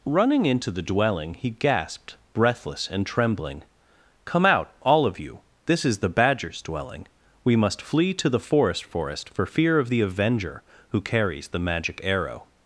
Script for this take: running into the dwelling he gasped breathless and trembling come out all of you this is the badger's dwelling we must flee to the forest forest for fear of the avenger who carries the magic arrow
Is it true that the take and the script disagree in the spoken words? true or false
false